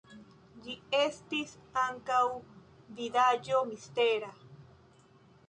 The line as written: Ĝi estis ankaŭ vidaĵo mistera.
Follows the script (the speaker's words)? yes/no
yes